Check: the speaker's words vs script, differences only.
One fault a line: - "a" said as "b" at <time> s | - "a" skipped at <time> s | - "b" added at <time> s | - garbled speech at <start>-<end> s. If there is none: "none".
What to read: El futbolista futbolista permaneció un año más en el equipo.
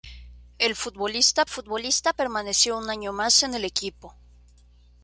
none